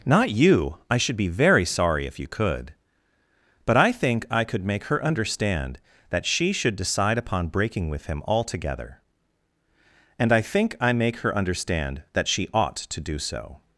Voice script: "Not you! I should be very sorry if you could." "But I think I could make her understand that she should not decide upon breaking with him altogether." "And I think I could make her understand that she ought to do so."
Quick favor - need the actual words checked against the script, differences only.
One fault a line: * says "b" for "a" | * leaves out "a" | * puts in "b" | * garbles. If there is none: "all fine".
* leaves out "not"
* leaves out "could"